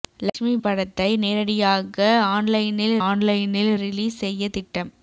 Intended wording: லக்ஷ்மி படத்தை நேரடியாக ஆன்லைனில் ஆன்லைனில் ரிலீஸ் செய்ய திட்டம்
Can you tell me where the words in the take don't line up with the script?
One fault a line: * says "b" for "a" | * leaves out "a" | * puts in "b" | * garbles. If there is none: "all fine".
all fine